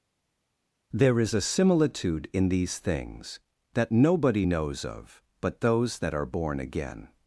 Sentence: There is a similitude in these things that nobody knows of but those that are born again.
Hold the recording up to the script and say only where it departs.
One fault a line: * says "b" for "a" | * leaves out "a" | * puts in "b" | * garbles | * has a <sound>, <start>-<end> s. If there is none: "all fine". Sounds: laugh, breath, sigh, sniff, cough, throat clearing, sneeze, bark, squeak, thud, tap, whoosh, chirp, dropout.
all fine